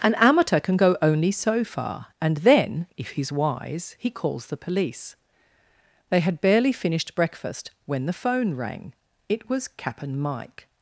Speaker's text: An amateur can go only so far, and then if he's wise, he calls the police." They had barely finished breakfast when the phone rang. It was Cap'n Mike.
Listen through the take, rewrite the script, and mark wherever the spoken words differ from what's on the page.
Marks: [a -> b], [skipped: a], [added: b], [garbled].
An amateur can go only so far, and then if he's wise, he calls the police." They had barely finished breakfast when the phone rang. It was Cap'n Mike.